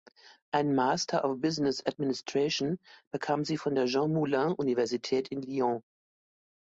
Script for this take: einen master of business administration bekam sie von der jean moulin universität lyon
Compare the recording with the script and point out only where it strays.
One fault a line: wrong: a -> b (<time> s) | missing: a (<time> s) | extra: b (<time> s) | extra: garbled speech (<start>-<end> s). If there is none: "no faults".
extra: in (5.3 s)